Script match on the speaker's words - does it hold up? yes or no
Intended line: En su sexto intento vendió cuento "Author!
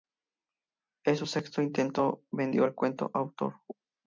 no